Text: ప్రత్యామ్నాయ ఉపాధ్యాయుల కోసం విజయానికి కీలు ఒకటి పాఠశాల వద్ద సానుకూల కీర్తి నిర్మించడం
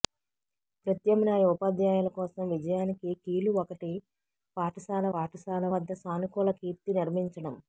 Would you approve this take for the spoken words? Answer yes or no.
no